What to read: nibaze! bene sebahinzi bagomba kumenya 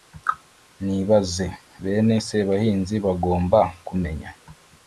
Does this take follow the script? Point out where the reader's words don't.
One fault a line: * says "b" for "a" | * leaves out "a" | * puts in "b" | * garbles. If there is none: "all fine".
all fine